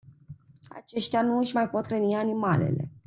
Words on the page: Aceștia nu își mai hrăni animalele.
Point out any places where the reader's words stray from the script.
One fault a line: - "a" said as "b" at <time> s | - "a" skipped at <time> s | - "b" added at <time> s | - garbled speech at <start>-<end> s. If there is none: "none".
- "pot" added at 1.7 s